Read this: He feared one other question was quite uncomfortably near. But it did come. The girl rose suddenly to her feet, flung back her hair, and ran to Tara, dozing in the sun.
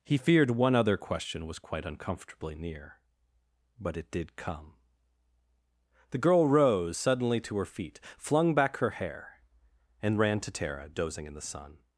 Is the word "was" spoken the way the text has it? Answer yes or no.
yes